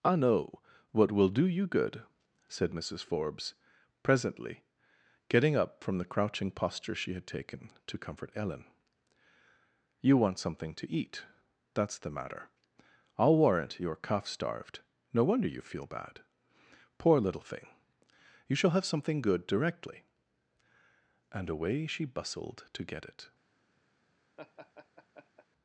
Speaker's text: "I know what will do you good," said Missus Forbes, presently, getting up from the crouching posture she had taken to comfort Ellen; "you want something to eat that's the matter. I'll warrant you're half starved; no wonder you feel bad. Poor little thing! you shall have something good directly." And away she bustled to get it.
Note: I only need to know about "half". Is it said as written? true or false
false